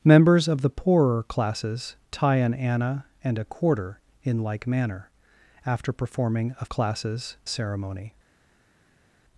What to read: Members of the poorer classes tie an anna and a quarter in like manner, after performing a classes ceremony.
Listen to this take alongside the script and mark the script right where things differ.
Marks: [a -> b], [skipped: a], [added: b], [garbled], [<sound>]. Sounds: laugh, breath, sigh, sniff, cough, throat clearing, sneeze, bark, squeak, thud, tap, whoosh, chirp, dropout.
Members of the poorer classes tie an anna and a quarter in like manner, after performing a classes ceremony.